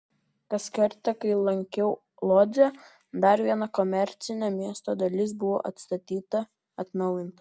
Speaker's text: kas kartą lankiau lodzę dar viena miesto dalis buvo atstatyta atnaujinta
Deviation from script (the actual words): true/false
true